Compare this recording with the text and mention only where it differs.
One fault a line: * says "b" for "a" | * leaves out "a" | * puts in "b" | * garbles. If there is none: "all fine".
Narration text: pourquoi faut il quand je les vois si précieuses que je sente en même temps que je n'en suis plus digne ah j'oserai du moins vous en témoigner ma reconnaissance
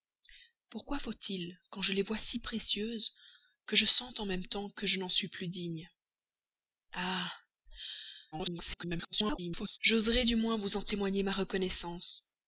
* garbles